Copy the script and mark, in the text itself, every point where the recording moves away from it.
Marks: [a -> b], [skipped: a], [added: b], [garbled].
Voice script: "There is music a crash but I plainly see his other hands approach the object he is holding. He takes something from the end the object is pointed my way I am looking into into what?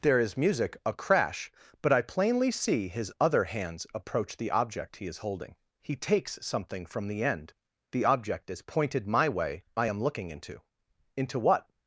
"There is music a crash but I plainly see his other hands approach the object he is holding. He takes something from the end the object is pointed my way I am looking into into what?